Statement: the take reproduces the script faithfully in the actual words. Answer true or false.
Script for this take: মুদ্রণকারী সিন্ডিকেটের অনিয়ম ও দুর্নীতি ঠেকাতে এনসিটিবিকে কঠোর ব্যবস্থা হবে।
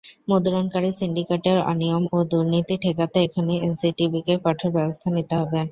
false